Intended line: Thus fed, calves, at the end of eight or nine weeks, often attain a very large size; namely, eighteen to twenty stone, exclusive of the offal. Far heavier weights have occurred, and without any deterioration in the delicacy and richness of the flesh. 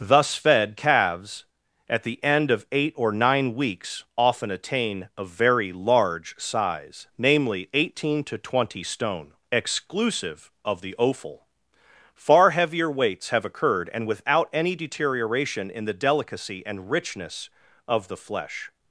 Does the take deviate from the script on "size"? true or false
false